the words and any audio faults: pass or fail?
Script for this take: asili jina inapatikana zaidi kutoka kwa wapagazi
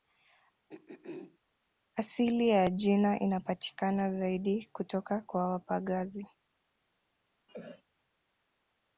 fail